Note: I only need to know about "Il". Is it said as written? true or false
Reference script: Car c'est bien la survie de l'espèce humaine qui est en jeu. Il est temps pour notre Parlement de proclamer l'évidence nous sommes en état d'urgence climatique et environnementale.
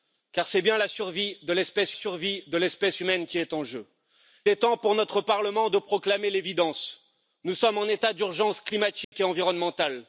false